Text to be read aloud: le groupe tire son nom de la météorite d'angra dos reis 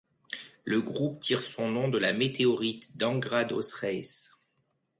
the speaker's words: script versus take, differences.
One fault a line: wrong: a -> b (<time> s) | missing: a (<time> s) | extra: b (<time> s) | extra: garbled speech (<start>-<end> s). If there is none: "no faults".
no faults